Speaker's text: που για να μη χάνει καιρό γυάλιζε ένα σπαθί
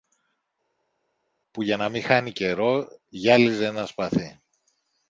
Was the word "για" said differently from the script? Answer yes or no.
no